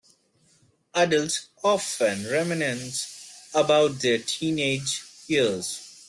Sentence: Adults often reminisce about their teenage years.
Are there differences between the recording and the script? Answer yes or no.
no